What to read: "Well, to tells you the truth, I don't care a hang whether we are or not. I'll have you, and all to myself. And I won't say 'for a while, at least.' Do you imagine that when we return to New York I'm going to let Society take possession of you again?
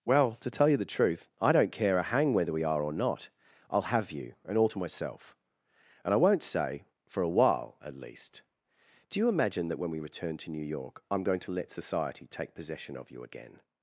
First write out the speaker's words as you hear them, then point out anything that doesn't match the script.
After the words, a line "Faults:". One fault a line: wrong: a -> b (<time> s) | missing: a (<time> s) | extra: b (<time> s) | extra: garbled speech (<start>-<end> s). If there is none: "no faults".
"Well, to tell you the truth, I don't care a hang whether we are or not. I'll have you, and all to myself. And I won't say 'for a while, at least.' Do you imagine that when we return to New York I'm going to let Society take possession of you again?
Faults:
wrong: tells -> tell (0.5 s)